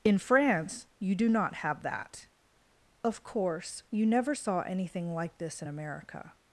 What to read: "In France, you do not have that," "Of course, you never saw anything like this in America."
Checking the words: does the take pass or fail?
pass